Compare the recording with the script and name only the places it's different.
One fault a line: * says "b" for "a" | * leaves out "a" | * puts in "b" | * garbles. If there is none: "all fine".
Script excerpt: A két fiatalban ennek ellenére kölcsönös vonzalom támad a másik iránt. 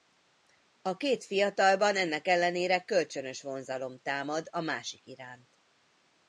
all fine